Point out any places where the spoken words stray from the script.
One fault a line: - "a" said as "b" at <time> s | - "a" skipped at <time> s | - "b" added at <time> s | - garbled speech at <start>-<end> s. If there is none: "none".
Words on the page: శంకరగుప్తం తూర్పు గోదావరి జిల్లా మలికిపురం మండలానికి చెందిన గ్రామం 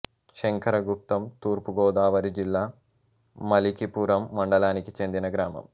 none